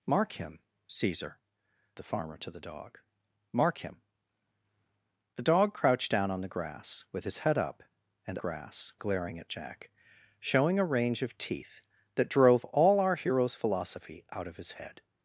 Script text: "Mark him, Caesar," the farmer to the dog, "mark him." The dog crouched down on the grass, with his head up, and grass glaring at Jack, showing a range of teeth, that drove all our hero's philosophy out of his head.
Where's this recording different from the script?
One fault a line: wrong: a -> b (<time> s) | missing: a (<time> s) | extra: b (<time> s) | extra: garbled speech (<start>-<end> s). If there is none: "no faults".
no faults